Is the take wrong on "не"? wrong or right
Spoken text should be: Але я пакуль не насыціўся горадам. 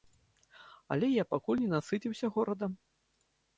right